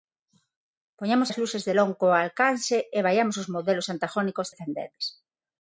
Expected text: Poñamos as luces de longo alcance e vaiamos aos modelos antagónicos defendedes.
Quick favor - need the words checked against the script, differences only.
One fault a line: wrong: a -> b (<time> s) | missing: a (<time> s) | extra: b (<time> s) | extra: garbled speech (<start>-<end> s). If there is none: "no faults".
no faults